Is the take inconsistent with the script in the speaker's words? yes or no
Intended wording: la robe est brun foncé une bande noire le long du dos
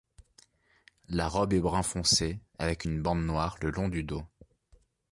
yes